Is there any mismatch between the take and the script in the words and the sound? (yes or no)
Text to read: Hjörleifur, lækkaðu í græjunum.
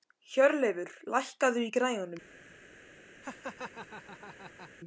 yes